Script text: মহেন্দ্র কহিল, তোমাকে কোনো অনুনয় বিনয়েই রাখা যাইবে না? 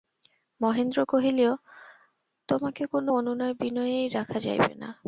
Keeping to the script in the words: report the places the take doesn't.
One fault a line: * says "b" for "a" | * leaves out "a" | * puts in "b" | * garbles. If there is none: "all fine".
all fine